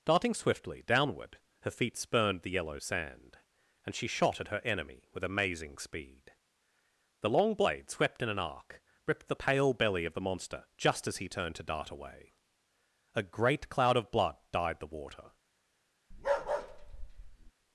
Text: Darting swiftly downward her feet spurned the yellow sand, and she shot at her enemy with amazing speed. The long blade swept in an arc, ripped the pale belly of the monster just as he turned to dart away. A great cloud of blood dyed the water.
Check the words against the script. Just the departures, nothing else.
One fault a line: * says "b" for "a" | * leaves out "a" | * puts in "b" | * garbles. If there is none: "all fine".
all fine